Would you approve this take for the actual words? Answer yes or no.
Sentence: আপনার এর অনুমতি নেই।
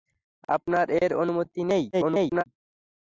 no